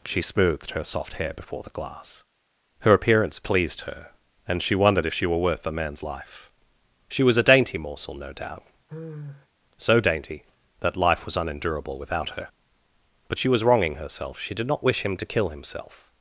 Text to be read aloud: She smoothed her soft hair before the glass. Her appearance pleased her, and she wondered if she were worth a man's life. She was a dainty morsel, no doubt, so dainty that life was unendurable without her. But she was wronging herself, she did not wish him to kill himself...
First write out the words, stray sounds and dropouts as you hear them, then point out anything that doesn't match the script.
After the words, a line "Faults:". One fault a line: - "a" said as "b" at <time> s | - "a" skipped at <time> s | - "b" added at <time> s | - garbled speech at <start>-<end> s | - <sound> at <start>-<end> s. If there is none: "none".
She smoothed her soft hair before the glass. Her appearance pleased her, and she wondered if she were worth a man's life. She was a dainty morsel, no doubt, so dainty that life was unendurable without her. But she was wronging herself, she did not wish him to kill himself...
Faults:
- sigh at 8.9-9.5 s